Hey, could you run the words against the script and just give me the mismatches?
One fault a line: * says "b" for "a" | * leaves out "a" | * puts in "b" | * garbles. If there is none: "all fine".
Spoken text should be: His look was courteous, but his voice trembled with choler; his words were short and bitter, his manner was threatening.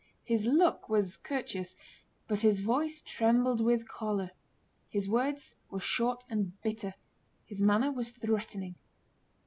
all fine